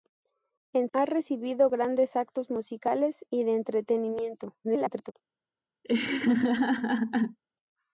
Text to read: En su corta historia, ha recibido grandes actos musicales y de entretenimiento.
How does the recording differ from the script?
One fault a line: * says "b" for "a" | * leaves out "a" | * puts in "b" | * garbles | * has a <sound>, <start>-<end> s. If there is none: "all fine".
* leaves out "su corta historia"
* garbles
* has a laugh, 5.8-7.4 s